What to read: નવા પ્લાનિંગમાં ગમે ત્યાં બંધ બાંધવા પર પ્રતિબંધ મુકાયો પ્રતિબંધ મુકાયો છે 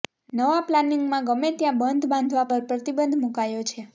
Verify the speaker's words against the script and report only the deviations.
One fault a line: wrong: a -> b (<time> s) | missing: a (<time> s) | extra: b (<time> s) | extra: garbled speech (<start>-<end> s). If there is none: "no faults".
missing: પ્રતિબંધ મુકાયો (3.6 s)